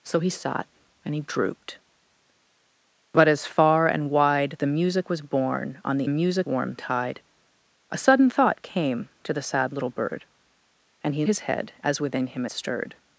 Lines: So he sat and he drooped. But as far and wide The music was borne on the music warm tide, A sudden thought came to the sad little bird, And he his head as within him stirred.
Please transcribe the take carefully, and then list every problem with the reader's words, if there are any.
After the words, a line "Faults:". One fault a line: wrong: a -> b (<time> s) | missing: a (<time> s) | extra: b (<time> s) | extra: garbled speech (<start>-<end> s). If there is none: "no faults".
So he sat and he drooped. But as far and wide The music was borne on the music warm tide, A sudden thought came to the sad little bird, And he his head as within him stirred.
Faults:
no faults